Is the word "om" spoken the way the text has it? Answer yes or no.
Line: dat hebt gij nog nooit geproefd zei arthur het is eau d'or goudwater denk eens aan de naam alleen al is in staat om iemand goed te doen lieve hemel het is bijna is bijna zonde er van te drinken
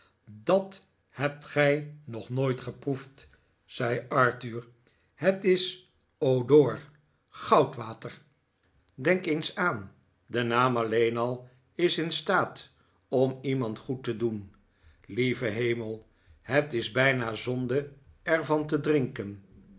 yes